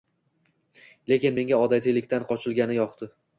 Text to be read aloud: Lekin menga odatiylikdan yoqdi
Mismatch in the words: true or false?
true